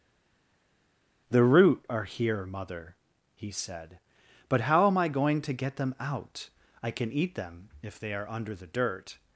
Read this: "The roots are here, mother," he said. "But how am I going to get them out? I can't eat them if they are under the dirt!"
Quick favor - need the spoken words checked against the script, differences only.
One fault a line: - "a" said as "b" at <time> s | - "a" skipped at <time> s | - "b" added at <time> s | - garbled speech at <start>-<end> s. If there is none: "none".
- "roots" said as "root" at 1.4 s
- "can't" said as "can" at 6.9 s